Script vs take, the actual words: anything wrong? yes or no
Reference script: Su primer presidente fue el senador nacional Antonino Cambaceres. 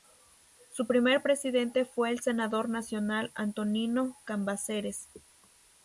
no